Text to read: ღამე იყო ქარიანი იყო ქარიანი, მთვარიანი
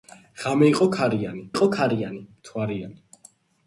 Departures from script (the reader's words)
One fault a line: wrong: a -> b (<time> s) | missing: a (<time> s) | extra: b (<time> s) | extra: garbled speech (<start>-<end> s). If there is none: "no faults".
no faults